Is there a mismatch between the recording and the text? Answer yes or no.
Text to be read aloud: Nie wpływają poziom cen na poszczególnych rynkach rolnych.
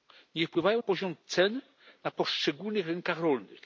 no